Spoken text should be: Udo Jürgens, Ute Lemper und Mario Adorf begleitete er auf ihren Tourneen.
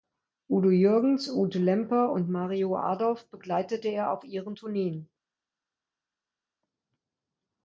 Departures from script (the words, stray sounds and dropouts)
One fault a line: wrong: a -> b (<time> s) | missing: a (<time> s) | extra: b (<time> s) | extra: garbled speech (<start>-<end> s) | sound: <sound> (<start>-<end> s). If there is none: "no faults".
no faults